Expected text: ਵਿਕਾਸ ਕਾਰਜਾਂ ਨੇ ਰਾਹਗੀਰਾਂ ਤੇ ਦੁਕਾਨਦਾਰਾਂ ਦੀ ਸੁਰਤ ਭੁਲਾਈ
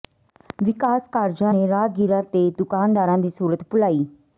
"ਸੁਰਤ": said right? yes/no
yes